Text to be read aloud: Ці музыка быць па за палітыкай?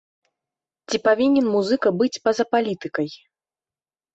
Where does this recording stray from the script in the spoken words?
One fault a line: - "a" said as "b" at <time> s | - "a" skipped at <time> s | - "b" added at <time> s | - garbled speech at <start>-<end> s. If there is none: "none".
- "павінен" added at 1.1 s